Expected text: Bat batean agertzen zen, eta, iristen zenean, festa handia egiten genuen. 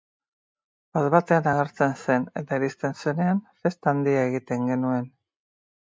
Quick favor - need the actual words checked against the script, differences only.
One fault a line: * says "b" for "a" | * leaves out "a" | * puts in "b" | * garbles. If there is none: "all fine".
all fine